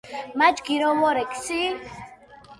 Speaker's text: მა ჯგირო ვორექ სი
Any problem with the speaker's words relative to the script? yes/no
no